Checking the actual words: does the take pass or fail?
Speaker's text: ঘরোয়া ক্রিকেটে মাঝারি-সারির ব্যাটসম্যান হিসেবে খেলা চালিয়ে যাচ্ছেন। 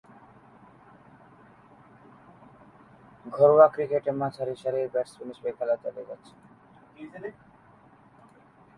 pass